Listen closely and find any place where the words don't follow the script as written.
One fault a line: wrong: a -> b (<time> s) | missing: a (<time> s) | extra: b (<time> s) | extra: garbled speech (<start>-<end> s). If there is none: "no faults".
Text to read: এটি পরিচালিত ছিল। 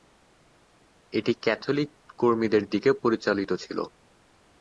extra: ক্যাথলিক কর্মীদের দিকে (1.4 s)